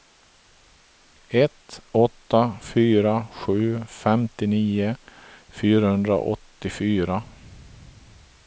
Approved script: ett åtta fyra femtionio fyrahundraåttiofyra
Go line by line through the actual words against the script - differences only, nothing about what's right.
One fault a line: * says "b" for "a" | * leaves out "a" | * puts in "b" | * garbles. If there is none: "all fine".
* puts in "sju"